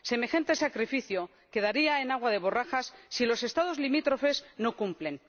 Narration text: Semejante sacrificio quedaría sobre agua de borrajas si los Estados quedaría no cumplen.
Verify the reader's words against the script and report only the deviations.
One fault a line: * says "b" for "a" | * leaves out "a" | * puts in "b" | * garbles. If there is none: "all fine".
* says "en" for "sobre"
* says "limítrofes" for "quedaría"